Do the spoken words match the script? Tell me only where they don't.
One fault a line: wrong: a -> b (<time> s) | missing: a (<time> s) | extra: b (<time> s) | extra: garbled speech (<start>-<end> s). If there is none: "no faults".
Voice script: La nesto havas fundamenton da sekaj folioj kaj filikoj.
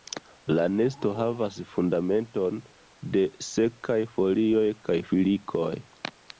wrong: da -> de (3.2 s)